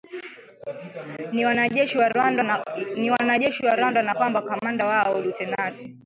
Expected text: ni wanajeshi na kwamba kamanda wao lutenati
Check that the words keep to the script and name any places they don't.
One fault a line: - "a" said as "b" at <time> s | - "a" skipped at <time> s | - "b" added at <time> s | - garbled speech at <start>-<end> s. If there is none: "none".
- "wa Rwanda" added at 3.6 s